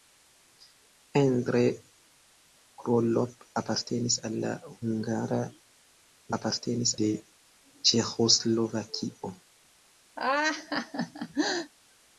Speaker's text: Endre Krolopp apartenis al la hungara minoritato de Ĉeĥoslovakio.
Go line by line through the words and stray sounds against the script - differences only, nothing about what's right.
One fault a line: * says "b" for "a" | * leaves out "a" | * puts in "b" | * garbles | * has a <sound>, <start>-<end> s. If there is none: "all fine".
* says "apartenis" for "minoritato"
* has a laugh, 10.2-11.7 s